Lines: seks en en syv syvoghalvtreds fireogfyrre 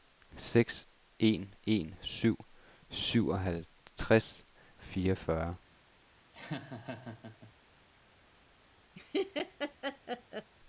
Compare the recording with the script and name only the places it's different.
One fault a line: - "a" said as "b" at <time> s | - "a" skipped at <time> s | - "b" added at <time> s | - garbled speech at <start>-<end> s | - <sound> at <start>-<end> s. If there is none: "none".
- laugh at 6.3-7.5 s
- laugh at 8.9-10.5 s